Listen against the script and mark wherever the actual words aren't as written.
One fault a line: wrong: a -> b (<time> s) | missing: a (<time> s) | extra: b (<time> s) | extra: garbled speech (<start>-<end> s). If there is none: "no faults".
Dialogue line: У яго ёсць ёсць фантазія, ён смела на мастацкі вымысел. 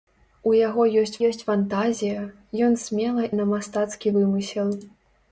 no faults